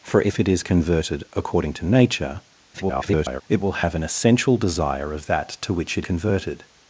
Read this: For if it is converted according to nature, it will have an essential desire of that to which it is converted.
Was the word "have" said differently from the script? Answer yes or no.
no